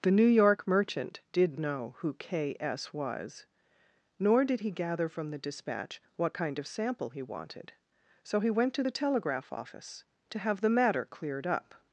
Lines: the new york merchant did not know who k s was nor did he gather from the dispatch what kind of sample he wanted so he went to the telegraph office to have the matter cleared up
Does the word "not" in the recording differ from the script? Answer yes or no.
yes